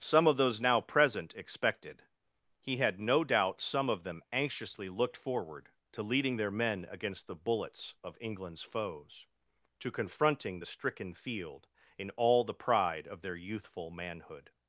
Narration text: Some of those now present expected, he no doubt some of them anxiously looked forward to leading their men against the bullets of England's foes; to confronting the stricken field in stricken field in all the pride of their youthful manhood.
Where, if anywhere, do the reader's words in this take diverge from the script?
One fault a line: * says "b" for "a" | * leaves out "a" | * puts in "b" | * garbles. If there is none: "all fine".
* puts in "had"
* leaves out "stricken field in"